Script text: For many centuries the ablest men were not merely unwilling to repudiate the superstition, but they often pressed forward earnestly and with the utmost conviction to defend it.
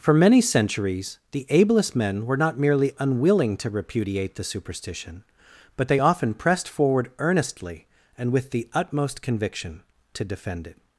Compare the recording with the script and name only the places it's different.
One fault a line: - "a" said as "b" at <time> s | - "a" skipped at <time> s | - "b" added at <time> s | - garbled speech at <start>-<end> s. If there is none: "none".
none